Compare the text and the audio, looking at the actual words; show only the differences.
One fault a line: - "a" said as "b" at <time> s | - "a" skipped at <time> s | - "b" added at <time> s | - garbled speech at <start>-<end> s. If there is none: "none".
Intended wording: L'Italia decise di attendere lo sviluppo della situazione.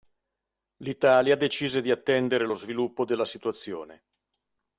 none